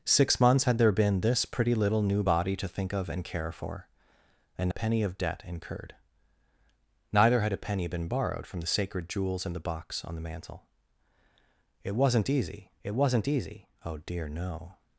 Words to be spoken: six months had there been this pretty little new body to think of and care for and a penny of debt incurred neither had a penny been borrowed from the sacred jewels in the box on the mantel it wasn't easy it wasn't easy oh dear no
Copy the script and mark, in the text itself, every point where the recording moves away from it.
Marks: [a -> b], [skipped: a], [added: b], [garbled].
six months had there been this pretty little new body to think of and care for and a penny of debt incurred neither had a penny been borrowed from the sacred jewels in the box on the mantel it wasn't easy it wasn't easy oh dear no